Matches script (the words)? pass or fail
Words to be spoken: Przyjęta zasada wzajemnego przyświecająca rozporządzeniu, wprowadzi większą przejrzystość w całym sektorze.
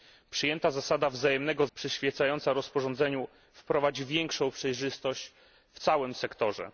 pass